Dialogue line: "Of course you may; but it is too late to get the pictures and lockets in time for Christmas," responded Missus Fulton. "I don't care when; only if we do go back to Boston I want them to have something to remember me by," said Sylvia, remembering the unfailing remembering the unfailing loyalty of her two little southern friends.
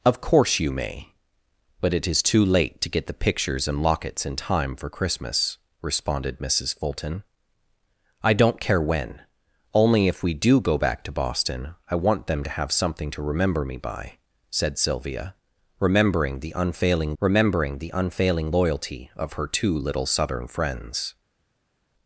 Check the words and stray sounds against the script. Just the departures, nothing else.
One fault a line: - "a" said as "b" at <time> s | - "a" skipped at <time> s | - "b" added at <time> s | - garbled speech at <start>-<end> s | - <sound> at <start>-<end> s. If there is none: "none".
none